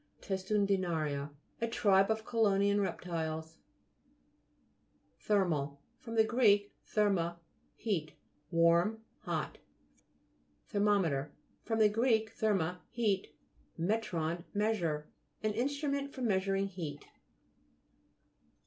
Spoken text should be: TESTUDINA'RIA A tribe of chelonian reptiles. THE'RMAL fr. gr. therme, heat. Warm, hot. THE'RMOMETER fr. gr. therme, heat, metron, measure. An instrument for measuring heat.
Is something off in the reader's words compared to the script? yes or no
no